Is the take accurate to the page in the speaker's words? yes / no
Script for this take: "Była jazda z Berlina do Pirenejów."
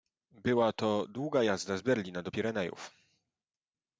no